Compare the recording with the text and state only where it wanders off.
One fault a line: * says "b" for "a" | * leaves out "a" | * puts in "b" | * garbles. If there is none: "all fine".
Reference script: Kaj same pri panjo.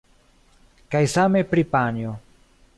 all fine